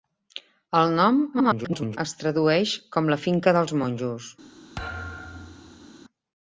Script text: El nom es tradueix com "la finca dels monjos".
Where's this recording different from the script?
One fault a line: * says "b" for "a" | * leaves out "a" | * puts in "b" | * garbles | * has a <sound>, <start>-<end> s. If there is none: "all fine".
* garbles
* has a thud, 4.8-5.9 s